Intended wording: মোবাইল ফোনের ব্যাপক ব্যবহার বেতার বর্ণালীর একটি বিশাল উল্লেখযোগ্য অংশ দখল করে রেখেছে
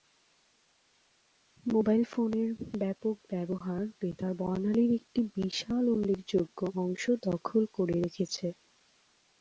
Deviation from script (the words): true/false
false